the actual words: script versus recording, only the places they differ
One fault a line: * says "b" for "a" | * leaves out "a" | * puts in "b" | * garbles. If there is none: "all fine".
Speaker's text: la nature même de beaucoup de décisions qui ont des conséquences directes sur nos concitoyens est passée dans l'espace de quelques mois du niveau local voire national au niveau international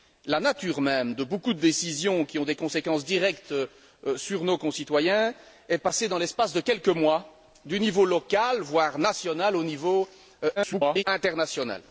* garbles